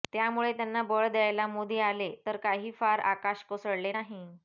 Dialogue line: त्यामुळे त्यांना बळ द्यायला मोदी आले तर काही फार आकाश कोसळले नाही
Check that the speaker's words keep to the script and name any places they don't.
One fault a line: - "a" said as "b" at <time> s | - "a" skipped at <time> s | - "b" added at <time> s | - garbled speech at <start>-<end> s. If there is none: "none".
none